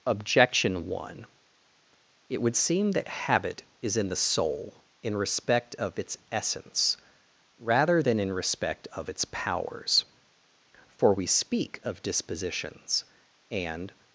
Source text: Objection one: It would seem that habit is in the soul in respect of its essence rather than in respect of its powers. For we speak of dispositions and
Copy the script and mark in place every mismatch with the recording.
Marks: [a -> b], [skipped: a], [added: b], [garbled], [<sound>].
Objection one: It would seem that habit is in the soul in respect of its essence rather than in respect of its powers. For we speak of dispositions and